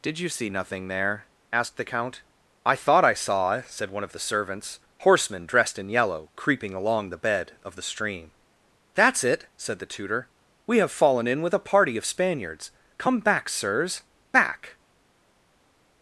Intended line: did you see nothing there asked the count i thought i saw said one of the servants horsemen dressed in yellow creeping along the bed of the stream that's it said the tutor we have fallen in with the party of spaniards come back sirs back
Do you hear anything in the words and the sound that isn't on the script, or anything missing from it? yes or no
yes